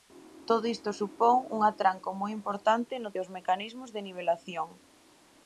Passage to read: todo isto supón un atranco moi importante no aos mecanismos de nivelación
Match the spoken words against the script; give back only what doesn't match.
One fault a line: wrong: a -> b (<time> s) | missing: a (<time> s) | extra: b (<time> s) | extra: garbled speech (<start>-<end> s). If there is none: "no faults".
no faults